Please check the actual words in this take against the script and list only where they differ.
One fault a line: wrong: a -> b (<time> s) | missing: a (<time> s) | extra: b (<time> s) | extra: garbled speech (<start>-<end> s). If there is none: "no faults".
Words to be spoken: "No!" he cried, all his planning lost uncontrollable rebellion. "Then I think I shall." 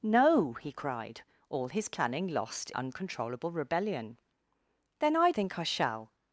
no faults